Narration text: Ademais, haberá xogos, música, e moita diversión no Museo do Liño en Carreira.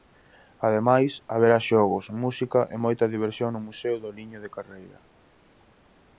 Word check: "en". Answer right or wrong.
wrong